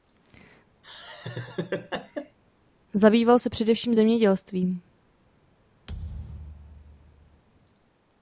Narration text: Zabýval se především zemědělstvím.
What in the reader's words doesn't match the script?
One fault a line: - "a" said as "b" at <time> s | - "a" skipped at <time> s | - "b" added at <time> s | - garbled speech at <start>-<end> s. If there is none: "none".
none